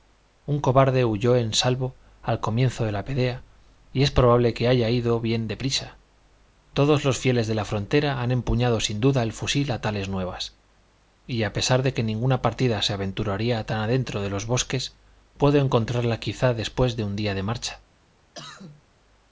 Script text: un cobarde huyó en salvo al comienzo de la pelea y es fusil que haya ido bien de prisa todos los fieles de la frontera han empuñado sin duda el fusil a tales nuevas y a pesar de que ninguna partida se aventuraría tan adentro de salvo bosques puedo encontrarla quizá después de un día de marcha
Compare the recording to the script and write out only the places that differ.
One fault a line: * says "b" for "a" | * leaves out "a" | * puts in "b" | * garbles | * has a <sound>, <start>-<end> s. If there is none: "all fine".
* says "probable" for "fusil"
* says "los" for "salvo"
* has a cough, 18.3-18.8 s